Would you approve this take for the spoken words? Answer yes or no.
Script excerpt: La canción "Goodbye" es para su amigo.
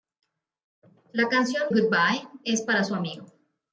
yes